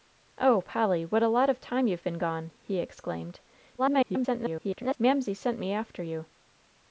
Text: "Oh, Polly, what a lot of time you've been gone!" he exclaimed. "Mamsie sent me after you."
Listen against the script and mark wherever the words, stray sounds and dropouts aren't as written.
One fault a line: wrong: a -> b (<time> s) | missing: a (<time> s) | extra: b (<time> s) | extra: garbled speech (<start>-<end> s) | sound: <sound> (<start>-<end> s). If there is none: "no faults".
extra: garbled speech (3.8-5.0 s)